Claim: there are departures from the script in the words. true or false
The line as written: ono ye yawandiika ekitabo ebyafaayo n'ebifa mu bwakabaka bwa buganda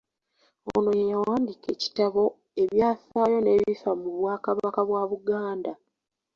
false